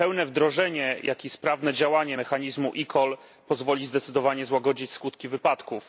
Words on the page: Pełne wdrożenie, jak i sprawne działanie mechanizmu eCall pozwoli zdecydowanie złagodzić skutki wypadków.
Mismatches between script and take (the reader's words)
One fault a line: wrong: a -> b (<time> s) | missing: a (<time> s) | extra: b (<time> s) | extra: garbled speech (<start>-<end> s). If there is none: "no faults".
no faults